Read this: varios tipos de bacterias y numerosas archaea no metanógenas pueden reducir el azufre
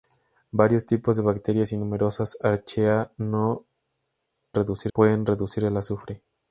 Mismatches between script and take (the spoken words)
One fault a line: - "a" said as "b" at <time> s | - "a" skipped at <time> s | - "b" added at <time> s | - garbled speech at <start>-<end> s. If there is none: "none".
- "metanógenas" said as "reducir" at 4.5 s